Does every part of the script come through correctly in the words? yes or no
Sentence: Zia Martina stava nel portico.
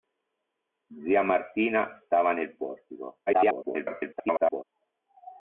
no